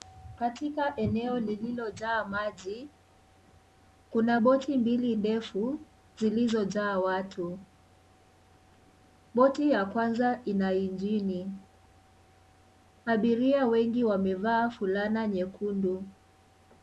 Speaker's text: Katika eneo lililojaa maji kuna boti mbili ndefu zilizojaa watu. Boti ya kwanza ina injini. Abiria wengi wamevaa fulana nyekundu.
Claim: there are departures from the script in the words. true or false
false